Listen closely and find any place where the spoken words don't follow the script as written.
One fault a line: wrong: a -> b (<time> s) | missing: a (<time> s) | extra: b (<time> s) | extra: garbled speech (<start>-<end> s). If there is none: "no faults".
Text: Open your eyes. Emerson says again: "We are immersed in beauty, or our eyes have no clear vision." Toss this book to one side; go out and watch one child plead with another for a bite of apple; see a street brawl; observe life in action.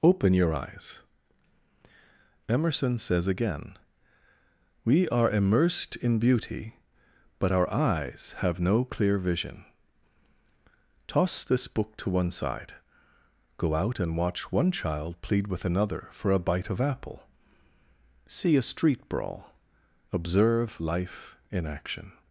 wrong: or -> but (7.4 s)